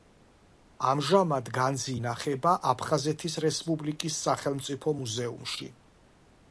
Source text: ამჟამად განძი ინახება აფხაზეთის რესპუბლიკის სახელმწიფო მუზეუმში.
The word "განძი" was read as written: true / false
true